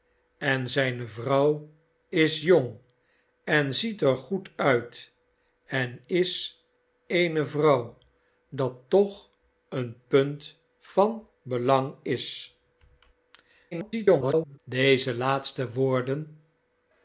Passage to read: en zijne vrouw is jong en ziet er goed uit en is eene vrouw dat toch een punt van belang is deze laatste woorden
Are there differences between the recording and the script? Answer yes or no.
yes